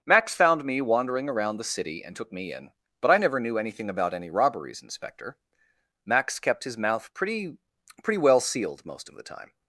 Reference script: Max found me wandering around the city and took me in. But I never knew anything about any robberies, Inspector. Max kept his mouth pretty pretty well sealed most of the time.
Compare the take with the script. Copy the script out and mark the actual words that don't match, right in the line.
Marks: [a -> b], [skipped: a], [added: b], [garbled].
Max found me wandering around the city and took me in. But I never knew anything about any robberies, Inspector. Max kept his mouth pretty pretty well sealed most of the time.